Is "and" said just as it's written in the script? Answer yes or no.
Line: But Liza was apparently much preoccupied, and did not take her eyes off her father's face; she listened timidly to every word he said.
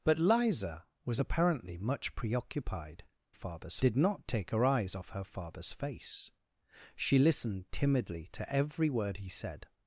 no